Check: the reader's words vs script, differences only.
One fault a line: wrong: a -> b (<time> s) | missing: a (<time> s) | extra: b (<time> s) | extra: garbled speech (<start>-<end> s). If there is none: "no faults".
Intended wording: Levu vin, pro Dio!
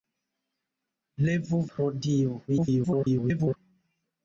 missing: vin (1.6 s)
extra: garbled speech (2.5-3.6 s)